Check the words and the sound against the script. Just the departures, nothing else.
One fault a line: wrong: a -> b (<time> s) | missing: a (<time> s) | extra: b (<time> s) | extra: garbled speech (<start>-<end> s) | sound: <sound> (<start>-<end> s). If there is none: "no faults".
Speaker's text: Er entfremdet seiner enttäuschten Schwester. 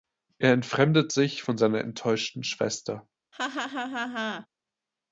extra: sich von (1.1 s)
sound: laugh (3.3-4.5 s)